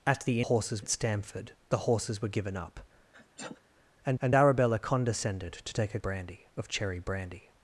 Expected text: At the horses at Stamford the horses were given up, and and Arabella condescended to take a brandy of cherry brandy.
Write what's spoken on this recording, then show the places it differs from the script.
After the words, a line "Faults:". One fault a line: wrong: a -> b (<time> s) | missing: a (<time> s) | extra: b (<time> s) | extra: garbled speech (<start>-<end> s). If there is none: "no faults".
At the horses at Stamford the horses were given up, and and Arabella condescended to take a brandy of cherry brandy.
Faults:
no faults